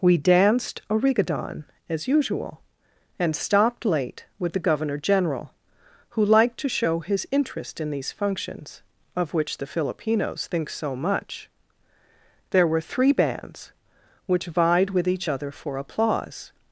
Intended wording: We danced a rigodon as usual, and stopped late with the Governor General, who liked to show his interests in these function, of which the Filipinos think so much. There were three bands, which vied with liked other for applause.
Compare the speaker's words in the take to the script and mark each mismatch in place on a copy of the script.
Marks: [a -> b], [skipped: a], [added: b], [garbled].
We danced a rigodon as usual, and stopped late with the Governor General, who liked to show his [interests -> interest] in these [function, -> functions] of which the Filipinos think so much. There were three bands, which vied with [liked -> each] other for applause.